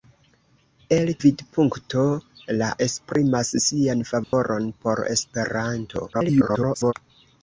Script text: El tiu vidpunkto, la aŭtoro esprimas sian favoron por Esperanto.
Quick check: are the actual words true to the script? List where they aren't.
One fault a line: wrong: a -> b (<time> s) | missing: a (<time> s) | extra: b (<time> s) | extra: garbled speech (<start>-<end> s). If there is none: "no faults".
missing: tiu (1.1 s)
missing: aŭtoro (2.7 s)
extra: garbled speech (6.1-6.9 s)